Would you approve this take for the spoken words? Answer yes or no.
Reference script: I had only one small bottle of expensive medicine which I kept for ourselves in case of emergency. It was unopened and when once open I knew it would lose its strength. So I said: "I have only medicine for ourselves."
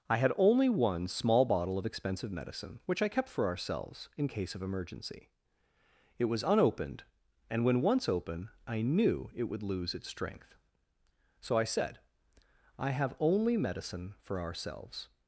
yes